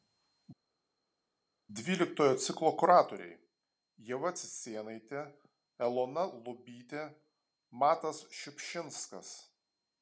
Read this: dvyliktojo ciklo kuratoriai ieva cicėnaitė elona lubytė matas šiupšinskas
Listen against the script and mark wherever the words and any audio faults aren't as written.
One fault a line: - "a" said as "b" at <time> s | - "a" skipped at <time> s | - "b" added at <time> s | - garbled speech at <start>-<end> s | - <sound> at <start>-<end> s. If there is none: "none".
none